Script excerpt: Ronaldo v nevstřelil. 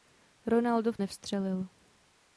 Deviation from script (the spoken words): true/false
false